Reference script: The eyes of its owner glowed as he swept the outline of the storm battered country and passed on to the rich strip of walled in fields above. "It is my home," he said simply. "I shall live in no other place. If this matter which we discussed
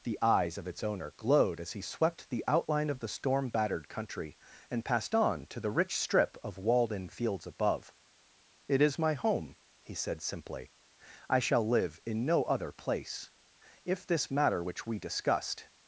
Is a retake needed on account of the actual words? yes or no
no